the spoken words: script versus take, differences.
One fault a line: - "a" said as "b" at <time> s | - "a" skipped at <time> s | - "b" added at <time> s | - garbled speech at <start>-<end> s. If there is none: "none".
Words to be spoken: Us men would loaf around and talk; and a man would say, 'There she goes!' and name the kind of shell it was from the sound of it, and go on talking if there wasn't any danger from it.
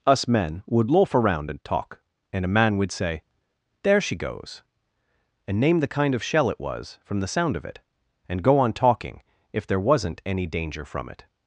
none